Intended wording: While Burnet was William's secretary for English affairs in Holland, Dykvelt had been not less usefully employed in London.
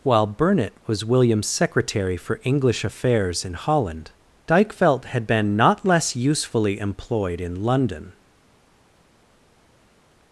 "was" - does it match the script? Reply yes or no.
yes